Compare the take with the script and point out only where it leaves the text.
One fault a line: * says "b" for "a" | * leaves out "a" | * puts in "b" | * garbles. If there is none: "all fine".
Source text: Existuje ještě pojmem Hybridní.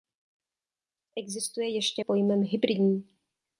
all fine